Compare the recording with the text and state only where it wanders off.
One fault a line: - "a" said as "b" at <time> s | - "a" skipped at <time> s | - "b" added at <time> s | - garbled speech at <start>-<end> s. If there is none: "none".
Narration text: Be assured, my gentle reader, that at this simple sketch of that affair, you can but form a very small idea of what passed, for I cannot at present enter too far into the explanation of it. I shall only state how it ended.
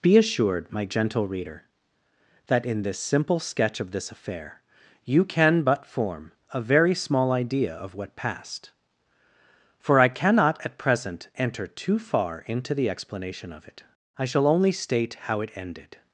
- "at" said as "in" at 2.6 s
- "that" said as "this" at 3.9 s